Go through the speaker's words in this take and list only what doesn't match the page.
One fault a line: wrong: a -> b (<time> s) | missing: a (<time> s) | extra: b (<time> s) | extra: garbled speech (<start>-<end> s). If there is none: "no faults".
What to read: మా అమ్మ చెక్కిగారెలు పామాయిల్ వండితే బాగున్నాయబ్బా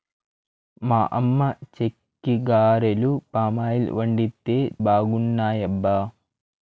no faults